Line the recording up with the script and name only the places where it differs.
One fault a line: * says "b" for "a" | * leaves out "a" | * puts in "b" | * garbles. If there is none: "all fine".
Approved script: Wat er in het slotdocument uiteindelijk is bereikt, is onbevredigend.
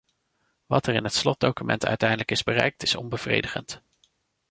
all fine